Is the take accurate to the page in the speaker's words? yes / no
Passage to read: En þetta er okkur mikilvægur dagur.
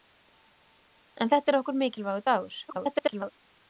no